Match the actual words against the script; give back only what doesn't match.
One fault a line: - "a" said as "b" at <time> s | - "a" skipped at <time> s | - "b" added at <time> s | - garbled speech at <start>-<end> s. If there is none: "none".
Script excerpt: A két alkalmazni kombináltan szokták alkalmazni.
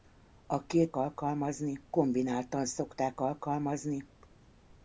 none